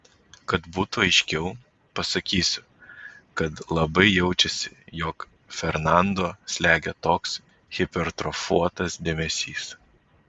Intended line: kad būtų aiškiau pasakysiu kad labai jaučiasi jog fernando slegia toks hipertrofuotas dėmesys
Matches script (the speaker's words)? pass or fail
pass